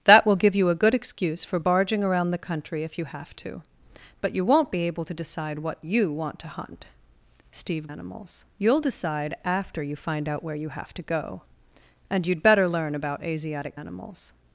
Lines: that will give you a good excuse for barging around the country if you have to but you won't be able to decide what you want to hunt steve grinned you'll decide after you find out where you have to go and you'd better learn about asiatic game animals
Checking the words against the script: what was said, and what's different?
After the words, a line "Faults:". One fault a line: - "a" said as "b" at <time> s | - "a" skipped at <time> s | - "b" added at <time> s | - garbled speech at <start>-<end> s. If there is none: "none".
that will give you a good excuse for barging around the country if you have to but you won't be able to decide what you want to hunt steve animals you'll decide after you find out where you have to go and you'd better learn about asiatic animals
Faults:
- "grinned" said as "animals" at 7.9 s
- "game" skipped at 13.8 s